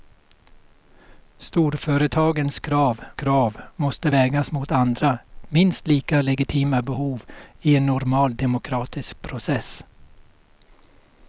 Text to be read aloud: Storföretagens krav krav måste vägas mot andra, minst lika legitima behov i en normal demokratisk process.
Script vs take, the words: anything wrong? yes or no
no